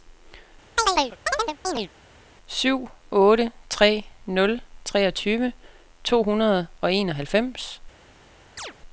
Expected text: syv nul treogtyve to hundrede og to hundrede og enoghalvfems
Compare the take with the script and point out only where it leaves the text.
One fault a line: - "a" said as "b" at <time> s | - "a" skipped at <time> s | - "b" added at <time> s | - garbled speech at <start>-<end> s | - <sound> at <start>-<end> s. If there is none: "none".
- chirp at 0.8-1.9 s
- "otte tre" added at 3.1 s
- "to hundrede og" skipped at 6.9 s
- chirp at 8.6-8.7 s